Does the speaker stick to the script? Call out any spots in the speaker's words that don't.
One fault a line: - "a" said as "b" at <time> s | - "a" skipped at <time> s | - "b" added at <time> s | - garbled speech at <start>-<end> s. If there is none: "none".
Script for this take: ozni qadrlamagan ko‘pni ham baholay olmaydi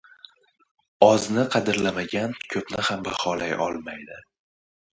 none